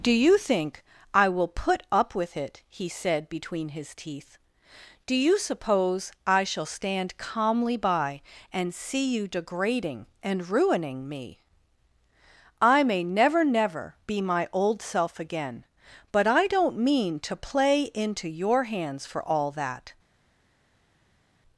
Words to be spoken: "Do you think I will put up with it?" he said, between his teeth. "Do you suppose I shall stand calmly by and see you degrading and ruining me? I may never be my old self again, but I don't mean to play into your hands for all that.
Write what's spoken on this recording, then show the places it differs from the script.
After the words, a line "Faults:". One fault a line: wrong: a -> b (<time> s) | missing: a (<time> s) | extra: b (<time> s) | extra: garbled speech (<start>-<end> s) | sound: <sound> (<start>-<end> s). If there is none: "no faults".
"Do you think I will put up with it?" he said, between his teeth. "Do you suppose I shall stand calmly by and see you degrading and ruining me? I may never never be my old self again, but I don't mean to play into your hands for all that.
Faults:
extra: never (13.4 s)